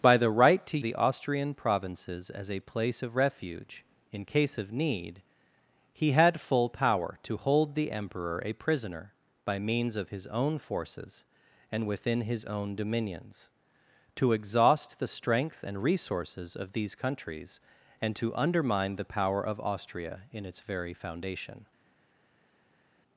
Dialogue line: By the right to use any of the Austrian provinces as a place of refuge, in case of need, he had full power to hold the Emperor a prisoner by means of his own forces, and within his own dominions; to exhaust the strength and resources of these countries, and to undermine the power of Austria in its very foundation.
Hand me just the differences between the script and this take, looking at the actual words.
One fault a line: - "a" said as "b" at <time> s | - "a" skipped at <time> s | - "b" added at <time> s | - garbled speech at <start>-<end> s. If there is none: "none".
- "use any of" skipped at 0.8 s